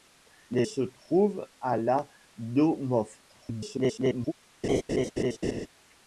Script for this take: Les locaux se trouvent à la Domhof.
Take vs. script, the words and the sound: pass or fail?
fail